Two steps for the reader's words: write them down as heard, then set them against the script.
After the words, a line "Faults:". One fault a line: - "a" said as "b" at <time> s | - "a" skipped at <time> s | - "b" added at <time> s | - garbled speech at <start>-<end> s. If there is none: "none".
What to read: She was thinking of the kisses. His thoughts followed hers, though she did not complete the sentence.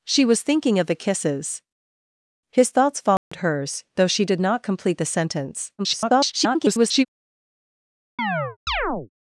She was thinking of the kisses. His thoughts followed hers, though she did not complete the sentence. [garbled]
Faults:
- garbled speech at 5.8-7.1 s